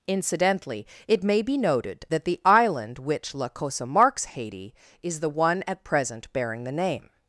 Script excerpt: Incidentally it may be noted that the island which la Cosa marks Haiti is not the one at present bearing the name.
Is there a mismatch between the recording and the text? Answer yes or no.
yes